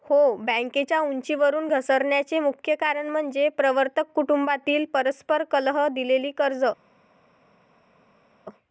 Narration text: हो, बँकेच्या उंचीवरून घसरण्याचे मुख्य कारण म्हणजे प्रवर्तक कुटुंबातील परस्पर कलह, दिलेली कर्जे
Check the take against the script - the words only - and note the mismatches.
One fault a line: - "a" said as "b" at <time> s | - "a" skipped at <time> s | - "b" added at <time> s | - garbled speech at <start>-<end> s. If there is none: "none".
none